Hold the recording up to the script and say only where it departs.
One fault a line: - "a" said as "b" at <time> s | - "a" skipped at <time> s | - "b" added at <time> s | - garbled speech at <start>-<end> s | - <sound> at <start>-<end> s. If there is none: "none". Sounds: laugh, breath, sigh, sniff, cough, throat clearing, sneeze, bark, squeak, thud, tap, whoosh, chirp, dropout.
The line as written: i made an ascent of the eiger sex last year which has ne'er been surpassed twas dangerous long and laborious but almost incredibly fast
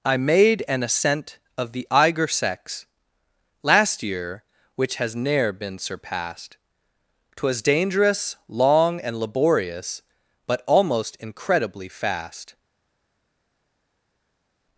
none